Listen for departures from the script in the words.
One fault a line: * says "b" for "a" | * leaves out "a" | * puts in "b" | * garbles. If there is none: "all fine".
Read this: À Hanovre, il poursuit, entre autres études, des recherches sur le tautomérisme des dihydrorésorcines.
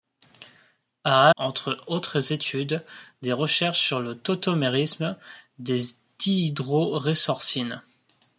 * leaves out "Hanovre il poursuit"